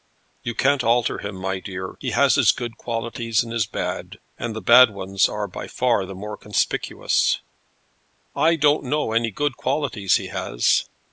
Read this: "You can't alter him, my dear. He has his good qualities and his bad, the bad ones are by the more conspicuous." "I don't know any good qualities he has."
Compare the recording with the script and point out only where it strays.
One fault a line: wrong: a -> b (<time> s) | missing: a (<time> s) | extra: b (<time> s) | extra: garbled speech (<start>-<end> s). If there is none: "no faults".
extra: and (4.4 s)
extra: far (5.7 s)